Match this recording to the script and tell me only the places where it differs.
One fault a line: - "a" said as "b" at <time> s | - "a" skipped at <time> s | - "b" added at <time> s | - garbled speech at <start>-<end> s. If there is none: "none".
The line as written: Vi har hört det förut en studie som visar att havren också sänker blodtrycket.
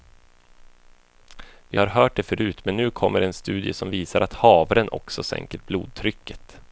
- "men nu kommer" added at 2.6 s